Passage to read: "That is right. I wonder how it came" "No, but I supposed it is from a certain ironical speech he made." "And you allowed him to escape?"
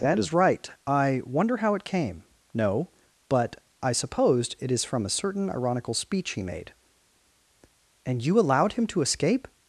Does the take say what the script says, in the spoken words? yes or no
yes